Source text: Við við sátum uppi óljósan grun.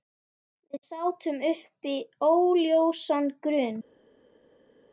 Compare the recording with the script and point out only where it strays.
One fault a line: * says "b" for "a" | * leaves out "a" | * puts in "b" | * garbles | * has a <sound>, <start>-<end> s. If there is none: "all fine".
* leaves out "við"